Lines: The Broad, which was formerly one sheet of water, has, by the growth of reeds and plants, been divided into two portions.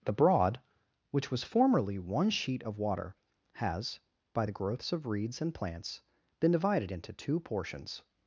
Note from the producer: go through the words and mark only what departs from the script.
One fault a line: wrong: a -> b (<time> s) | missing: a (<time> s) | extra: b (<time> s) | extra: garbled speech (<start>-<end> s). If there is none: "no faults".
wrong: growth -> growths (4.5 s)